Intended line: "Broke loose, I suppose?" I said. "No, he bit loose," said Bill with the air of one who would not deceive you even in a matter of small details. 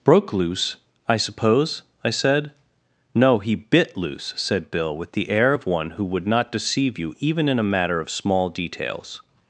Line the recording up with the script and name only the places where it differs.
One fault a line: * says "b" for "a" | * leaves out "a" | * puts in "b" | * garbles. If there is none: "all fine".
all fine